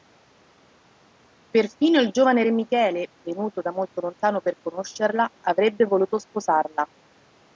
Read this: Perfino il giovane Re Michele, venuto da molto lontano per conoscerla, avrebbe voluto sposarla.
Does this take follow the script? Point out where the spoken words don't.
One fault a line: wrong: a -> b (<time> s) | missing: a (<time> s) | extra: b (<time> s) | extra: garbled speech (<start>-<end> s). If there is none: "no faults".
no faults